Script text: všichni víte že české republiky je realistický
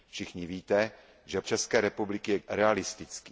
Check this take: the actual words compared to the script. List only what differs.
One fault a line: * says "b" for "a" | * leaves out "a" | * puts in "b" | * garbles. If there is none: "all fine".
all fine